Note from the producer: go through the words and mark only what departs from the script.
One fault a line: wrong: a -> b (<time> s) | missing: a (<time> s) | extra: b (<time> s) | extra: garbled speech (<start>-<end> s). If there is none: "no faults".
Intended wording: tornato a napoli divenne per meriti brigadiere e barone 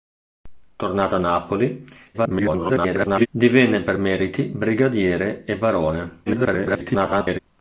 extra: garbled speech (2.1-3.3 s)
extra: garbled speech (6.3-7.4 s)